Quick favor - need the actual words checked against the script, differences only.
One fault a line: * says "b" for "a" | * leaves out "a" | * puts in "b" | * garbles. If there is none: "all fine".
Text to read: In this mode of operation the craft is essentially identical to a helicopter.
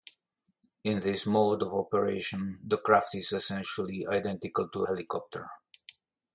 * leaves out "a"